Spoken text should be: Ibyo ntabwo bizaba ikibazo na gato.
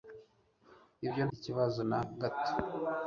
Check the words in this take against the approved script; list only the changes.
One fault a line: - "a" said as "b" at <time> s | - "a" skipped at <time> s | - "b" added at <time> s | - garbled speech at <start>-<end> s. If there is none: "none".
- "ntabwo bizaba" skipped at 1.2 s